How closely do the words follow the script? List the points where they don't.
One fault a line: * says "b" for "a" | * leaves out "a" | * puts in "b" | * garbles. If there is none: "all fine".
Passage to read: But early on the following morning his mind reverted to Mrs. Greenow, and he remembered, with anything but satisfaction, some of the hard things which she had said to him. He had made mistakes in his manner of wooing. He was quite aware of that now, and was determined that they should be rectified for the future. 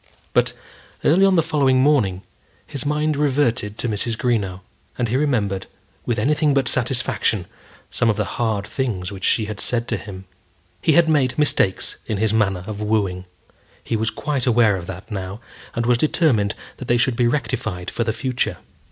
all fine